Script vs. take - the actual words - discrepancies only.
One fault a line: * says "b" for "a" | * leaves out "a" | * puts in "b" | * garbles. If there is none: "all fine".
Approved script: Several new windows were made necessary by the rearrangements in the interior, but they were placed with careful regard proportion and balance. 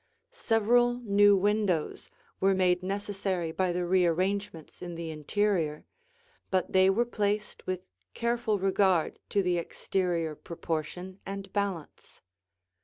* puts in "to the exterior"